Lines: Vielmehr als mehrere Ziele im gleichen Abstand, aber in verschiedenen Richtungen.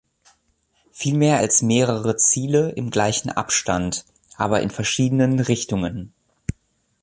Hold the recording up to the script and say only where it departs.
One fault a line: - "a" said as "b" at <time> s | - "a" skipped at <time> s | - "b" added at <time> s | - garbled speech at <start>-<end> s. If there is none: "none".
none